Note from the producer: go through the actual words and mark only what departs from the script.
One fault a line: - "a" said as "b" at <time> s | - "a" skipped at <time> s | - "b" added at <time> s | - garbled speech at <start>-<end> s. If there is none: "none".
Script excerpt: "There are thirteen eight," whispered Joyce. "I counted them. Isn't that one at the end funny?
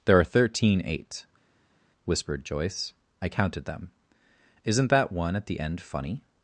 none